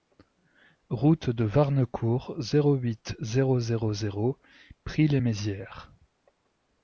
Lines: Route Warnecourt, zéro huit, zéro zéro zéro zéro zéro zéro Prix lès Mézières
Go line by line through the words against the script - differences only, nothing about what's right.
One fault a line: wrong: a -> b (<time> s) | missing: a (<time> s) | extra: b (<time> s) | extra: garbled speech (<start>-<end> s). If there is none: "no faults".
extra: de (1.3 s)
missing: zéro zéro zéro (4.4 s)